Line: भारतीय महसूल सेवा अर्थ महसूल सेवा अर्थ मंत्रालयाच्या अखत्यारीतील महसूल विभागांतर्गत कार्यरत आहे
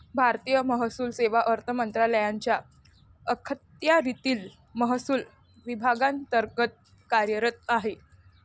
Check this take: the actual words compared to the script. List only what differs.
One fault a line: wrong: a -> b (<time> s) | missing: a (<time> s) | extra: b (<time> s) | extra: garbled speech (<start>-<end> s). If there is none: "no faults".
missing: महसूल सेवा अर्थ (1.7 s)